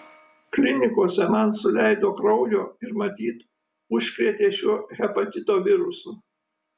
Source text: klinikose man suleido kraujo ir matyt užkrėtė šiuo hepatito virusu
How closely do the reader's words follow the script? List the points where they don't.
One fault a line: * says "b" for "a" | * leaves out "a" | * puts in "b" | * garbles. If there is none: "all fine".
all fine